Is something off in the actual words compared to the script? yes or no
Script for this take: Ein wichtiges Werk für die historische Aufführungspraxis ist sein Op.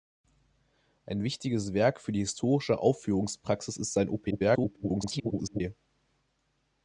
yes